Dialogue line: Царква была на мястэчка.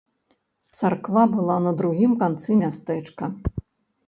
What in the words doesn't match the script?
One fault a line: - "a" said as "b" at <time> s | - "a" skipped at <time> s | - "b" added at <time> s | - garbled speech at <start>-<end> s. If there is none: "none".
- "другім канцы" added at 1.8 s